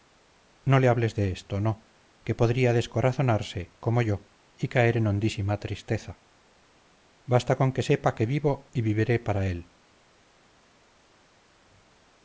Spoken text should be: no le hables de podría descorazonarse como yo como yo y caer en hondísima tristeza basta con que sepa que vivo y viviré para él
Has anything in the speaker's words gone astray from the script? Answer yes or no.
yes